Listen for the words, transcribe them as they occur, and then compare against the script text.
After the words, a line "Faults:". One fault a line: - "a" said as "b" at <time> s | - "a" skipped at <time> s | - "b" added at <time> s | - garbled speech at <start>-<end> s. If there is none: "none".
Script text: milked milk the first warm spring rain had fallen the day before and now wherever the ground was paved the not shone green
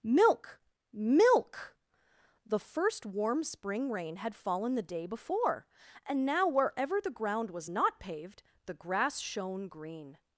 milk milk the first warm spring rain had fallen the day before and now wherever the ground was not paved the grass shone green
Faults:
- "milked" said as "milk" at 0.0 s
- "not" added at 7.7 s
- "not" said as "grass" at 8.7 s